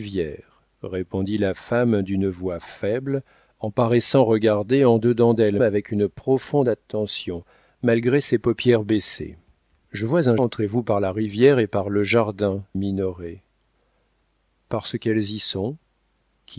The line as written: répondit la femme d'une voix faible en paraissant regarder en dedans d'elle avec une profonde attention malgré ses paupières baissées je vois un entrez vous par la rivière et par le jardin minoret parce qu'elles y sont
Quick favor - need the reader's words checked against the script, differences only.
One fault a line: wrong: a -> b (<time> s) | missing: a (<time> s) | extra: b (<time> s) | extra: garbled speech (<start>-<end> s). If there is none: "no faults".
no faults